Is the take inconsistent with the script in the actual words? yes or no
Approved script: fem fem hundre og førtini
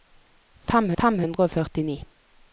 no